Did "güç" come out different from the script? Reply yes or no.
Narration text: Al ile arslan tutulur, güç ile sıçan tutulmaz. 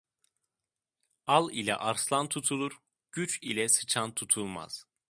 no